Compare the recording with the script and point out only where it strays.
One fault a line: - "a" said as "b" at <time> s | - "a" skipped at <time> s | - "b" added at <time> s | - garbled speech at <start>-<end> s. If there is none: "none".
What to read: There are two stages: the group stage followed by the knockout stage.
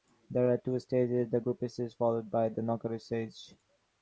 none